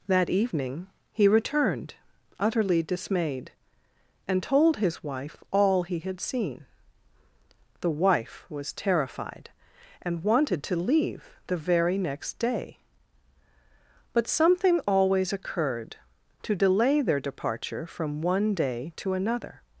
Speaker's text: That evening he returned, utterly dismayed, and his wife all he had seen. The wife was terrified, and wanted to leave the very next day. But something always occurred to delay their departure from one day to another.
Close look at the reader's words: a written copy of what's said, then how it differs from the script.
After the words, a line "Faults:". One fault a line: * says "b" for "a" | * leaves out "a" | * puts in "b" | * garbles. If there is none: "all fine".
That evening he returned, utterly dismayed, and told his wife all he had seen. The wife was terrified, and wanted to leave the very next day. But something always occurred to delay their departure from one day to another.
Faults:
* puts in "told"